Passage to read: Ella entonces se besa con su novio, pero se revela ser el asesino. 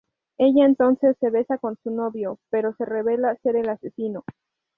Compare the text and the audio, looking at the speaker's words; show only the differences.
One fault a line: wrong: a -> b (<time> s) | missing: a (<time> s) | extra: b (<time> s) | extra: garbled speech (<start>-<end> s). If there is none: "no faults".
no faults